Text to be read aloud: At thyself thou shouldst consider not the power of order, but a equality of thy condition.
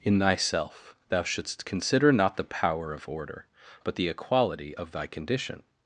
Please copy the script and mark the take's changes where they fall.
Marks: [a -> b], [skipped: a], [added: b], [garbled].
[At -> In] thyself thou shouldst consider not the power of order, but [a -> the] equality of thy condition.